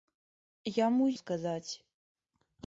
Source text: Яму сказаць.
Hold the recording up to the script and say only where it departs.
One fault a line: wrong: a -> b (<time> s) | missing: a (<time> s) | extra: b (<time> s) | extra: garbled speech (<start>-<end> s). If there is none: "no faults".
no faults